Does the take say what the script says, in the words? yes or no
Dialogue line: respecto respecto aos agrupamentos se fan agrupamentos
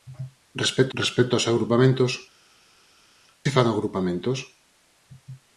yes